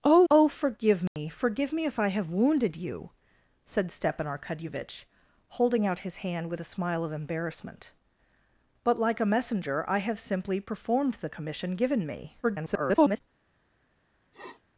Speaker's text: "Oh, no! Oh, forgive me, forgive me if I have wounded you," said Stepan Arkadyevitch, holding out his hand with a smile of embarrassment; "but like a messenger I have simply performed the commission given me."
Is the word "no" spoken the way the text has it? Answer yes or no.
no